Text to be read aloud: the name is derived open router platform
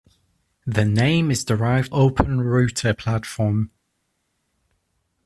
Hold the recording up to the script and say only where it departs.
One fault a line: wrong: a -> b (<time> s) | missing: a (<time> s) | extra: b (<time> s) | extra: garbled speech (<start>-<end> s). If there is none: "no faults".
no faults